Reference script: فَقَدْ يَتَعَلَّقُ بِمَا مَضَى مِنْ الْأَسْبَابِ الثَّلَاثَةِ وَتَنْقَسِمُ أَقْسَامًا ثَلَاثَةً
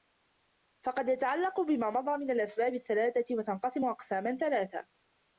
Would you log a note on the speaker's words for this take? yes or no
no